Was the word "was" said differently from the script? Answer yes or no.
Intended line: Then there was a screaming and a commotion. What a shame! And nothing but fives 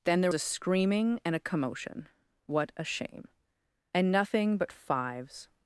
yes